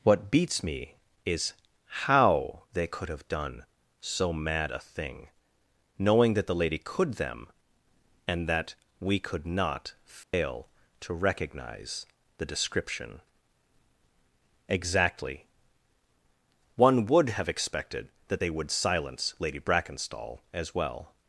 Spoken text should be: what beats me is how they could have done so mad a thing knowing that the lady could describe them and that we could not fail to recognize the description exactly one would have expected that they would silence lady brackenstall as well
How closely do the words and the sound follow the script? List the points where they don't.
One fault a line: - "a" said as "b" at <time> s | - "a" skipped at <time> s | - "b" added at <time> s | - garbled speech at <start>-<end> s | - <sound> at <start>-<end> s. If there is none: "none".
- "describe" skipped at 7.2 s
- dropout at 10.2-10.3 s